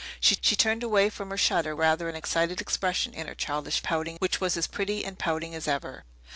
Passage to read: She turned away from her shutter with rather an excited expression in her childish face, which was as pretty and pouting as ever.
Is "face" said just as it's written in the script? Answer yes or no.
no